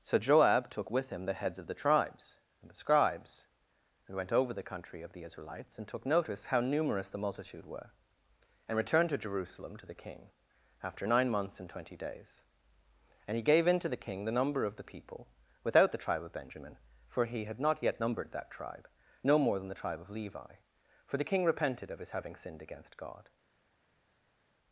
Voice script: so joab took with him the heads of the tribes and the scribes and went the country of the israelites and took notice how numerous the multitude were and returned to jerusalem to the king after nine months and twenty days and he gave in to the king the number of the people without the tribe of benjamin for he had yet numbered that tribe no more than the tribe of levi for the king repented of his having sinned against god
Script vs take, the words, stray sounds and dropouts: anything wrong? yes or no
yes